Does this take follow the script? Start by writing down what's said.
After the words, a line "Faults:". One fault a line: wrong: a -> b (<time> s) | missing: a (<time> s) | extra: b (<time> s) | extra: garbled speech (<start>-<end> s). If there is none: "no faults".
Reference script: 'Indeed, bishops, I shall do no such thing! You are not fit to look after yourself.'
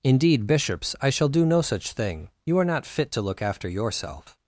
'Indeed, bishops, I shall do no such thing! You are not fit to look after yourself.'
Faults:
no faults